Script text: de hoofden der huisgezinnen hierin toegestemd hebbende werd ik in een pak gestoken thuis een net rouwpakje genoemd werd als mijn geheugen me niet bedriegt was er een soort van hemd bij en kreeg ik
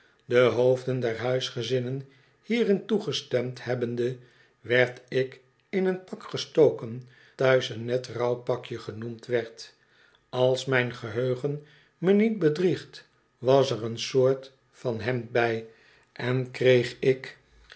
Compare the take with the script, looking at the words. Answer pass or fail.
pass